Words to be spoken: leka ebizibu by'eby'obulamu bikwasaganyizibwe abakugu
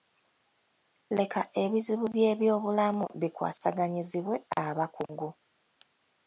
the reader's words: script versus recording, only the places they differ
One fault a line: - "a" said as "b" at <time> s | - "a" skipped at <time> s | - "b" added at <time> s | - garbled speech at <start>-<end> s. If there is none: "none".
none